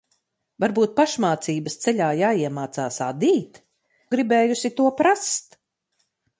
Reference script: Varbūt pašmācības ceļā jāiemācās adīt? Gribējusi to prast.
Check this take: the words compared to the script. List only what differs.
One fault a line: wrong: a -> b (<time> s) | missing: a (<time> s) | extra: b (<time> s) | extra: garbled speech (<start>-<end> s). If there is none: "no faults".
no faults